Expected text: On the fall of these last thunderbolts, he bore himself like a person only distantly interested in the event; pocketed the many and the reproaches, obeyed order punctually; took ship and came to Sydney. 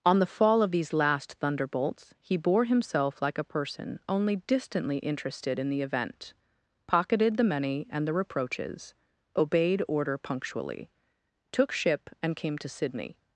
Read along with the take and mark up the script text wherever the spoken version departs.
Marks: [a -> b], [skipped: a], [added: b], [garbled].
On the fall of these last thunderbolts, he bore himself like a person only distantly interested in the event; pocketed the many and the reproaches, obeyed order punctually; took ship and came to Sydney.